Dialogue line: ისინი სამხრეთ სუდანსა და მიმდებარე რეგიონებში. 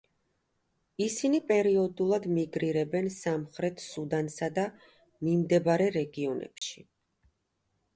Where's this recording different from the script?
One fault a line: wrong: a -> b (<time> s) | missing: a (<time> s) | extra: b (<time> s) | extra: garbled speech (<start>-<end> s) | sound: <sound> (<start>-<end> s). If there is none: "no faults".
extra: პერიოდულად მიგრირებენ (1.5 s)
sound: dropout (6.6-6.6 s)